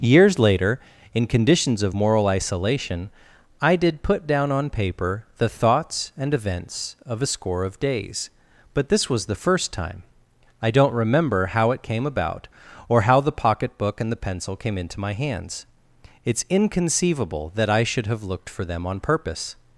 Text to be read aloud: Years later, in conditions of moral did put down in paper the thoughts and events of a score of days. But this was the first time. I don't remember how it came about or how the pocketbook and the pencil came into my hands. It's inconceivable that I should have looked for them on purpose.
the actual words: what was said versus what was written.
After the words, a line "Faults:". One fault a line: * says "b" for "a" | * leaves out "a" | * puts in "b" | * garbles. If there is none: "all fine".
Years later, in conditions of moral isolation, I did put down on paper the thoughts and events of a score of days. But this was the first time. I don't remember how it came about or how the pocketbook and the pencil came into my hands. It's inconceivable that I should have looked for them on purpose.
Faults:
* puts in "isolation I"
* says "on" for "in"